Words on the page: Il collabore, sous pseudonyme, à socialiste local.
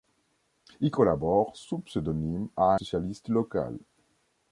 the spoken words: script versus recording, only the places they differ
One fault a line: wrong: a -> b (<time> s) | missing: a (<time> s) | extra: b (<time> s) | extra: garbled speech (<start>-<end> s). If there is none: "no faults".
no faults